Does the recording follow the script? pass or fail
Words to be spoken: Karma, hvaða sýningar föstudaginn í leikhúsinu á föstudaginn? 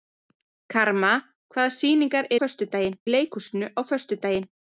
pass